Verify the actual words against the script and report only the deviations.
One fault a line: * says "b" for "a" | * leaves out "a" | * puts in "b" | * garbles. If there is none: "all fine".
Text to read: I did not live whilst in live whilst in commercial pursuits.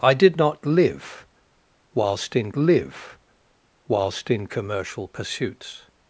all fine